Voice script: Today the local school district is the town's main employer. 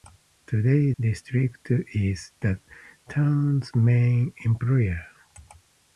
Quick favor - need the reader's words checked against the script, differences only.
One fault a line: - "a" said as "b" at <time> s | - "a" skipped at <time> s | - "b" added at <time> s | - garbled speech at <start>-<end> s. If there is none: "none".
- "the local school" skipped at 0.9 s